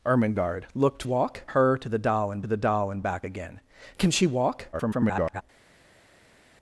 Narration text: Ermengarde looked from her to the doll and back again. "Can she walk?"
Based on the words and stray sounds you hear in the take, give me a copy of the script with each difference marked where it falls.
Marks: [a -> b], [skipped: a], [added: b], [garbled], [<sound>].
Ermengarde looked [from -> walk] her to the doll and [added: the doll and] back again. "Can she walk?" [garbled]